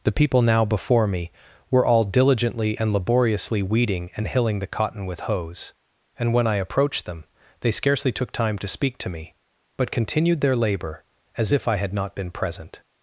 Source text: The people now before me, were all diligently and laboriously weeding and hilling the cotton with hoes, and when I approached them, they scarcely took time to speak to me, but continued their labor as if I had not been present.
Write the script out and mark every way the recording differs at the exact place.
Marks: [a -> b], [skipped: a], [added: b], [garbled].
The people now before me, were all diligently and laboriously weeding and hilling the cotton with hoes, and when I approached them, they scarcely took time to speak to me, but continued their labor as if I had not been present.